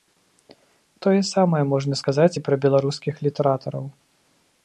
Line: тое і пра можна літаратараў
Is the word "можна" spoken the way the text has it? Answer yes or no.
no